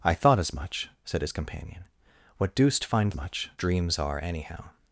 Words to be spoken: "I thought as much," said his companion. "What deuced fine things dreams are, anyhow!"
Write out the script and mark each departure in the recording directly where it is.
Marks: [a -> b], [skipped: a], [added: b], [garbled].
"I thought as much," said his companion. "What deuced fine [things -> much] dreams are, anyhow!"